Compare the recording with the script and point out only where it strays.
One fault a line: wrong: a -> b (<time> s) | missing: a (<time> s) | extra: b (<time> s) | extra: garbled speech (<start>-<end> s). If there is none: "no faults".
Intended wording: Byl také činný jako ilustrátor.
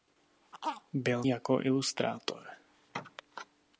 missing: také činný (1.2 s)